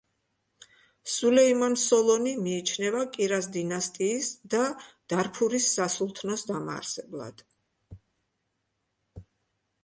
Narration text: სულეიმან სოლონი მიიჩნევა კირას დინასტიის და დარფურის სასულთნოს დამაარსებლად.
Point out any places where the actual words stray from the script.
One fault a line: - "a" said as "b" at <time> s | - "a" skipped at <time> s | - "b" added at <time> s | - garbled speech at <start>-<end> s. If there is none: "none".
none